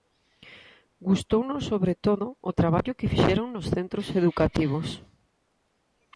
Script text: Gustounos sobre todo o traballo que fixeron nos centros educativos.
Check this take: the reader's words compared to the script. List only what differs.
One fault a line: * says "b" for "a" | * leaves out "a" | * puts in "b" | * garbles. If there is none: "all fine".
all fine